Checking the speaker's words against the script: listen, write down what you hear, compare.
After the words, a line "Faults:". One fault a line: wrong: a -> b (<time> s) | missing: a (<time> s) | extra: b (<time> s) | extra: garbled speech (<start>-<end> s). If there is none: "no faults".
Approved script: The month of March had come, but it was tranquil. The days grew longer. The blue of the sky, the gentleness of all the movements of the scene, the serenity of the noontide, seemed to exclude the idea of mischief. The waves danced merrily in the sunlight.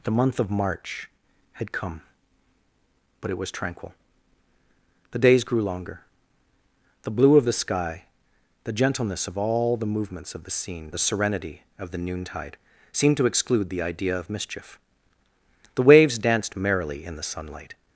The month of March had come, but it was tranquil. The days grew longer. The blue of the sky, the gentleness of all the movements of the scene, the serenity of the noontide, seemed to exclude the idea of mischief. The waves danced merrily in the sunlight.
Faults:
no faults